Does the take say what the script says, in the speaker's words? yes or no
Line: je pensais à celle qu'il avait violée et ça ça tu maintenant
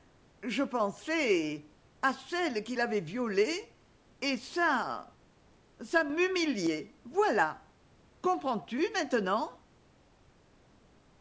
no